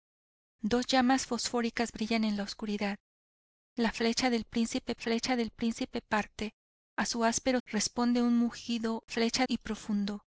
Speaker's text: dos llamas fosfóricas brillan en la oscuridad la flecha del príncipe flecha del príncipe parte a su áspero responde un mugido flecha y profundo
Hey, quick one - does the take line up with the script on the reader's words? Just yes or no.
yes